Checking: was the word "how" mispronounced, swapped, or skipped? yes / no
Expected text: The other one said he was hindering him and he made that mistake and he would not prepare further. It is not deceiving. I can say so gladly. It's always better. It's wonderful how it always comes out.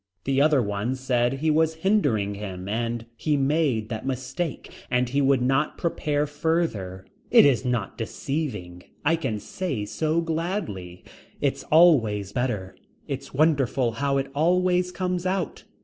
no